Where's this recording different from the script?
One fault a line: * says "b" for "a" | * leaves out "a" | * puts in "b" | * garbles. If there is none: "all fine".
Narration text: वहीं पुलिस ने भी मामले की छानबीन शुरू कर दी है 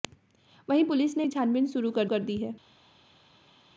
* leaves out "भी मामले"
* puts in "कर"